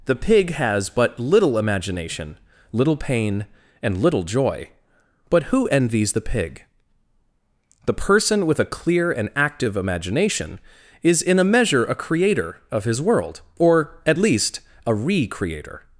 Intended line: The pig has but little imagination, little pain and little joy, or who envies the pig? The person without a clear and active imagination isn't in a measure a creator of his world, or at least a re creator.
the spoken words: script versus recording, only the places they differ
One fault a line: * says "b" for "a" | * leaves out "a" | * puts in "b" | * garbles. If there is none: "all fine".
* says "but" for "or"
* says "with" for "without"
* says "is" for "isn't"